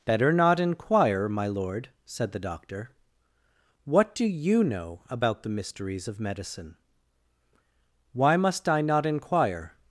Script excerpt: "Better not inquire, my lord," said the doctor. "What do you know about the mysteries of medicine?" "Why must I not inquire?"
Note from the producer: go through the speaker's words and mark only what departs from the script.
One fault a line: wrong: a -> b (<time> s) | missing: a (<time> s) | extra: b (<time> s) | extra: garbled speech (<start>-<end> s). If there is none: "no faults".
no faults